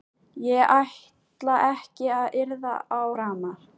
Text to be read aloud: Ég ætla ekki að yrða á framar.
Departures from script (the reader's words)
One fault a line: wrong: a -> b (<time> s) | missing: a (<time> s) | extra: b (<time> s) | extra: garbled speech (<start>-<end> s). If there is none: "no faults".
no faults